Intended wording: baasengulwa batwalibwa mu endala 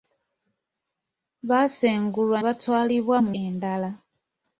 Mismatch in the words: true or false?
false